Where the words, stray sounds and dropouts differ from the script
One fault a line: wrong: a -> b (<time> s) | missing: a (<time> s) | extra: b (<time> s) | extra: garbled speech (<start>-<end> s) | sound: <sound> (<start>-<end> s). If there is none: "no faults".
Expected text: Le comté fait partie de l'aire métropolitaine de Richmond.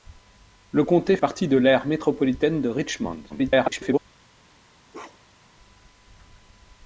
missing: fait (1.2 s)
extra: garbled speech (3.3-4.0 s)
sound: bark (4.9-5.5 s)